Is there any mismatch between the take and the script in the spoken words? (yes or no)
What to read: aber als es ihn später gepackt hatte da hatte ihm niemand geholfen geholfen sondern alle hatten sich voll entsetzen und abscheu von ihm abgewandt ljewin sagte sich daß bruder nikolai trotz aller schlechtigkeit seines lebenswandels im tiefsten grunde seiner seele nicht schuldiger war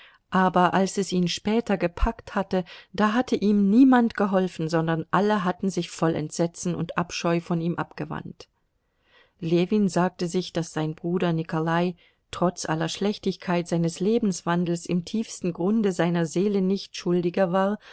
yes